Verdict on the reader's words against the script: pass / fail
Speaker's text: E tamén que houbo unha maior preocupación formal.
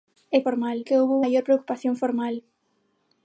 fail